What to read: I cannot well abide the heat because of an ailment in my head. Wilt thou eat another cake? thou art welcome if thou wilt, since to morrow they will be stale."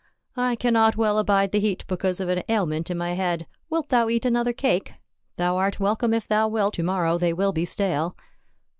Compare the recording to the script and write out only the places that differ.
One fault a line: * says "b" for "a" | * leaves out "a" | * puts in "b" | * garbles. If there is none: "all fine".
* leaves out "since"